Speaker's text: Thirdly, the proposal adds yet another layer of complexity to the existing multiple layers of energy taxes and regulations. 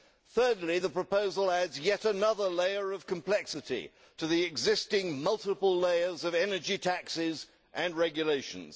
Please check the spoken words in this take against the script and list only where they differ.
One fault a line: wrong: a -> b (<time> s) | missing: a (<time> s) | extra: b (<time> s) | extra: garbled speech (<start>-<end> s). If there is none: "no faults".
no faults